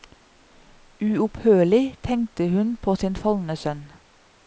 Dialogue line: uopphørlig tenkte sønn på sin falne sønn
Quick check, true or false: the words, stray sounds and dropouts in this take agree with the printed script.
false